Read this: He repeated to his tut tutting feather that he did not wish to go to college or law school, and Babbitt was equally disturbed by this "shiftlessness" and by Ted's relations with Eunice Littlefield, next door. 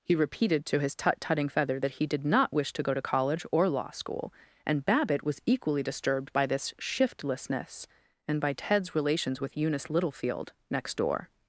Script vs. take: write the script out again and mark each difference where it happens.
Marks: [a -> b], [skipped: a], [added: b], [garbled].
He repeated to his tut tutting feather that he did not wish to go to college or law school, and Babbitt was equally disturbed by this "shiftlessness" and by Ted's relations with Eunice Littlefield, next door.